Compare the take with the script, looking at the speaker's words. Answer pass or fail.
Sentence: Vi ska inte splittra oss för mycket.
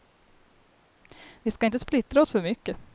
pass